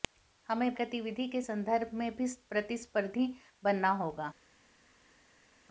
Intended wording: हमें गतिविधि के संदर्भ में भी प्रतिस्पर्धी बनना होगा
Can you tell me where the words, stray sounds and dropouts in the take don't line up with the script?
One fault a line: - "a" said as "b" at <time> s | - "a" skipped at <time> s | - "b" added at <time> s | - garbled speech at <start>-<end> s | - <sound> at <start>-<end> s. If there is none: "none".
none